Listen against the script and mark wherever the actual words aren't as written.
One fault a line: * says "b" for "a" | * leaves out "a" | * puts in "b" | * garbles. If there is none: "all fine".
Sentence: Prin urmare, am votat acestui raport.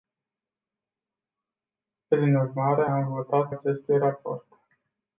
all fine